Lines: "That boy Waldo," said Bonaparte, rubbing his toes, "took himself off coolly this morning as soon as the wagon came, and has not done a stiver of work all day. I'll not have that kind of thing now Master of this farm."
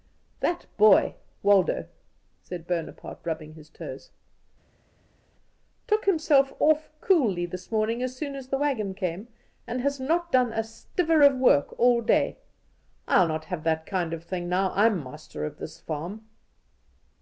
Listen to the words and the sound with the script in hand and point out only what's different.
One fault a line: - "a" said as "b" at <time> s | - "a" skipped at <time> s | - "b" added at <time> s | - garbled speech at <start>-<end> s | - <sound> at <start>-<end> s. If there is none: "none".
- "I'm" added at 14.7 s